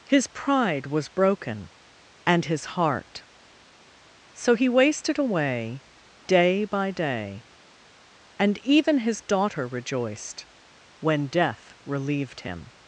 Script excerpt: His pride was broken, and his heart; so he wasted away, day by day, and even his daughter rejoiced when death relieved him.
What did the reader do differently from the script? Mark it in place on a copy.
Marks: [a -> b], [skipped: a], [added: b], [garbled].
His pride was broken, and his heart; so he wasted away, day by day, and even his daughter rejoiced when death relieved him.